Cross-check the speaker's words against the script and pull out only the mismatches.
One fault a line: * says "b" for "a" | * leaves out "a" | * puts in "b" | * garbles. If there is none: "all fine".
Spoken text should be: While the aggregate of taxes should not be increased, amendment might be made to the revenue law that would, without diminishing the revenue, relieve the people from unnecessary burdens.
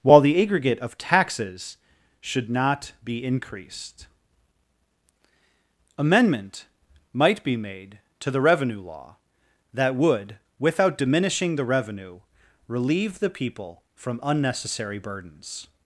all fine